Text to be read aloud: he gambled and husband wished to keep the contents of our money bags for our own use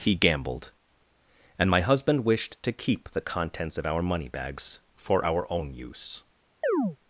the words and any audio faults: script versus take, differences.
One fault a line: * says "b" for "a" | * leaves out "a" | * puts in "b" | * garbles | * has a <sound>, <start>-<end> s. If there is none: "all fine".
* puts in "my"
* has a chirp, 6.6-7.0 s